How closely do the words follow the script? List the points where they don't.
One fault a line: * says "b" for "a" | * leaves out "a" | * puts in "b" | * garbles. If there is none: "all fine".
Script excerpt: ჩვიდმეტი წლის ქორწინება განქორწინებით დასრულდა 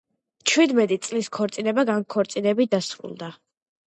all fine